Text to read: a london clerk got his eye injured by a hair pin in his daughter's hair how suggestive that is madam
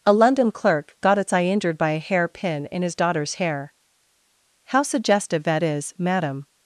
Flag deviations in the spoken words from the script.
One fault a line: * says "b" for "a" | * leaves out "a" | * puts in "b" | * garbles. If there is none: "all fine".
* says "its" for "his"